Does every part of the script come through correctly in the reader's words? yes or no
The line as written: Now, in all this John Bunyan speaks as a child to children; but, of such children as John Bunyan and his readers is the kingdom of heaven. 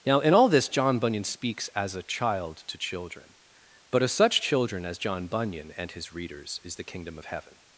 yes